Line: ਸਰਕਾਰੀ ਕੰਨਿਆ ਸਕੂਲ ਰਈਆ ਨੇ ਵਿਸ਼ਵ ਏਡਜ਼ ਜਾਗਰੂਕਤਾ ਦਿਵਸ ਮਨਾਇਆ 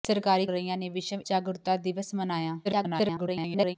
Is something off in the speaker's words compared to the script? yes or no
yes